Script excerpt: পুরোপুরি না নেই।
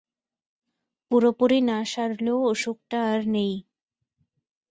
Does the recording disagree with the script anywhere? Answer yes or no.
yes